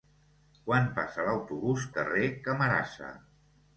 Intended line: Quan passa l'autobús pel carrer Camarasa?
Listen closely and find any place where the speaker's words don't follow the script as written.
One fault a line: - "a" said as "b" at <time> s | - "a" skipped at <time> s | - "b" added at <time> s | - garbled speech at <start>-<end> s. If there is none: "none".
- "pel" skipped at 1.9 s